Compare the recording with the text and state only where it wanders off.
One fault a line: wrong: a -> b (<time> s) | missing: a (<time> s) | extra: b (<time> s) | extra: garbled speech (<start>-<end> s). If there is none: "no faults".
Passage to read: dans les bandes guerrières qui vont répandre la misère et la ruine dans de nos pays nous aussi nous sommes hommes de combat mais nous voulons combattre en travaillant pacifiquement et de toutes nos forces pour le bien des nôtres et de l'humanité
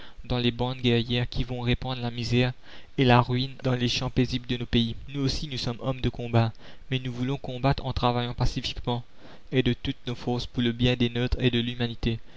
extra: les champs paisibles (3.7 s)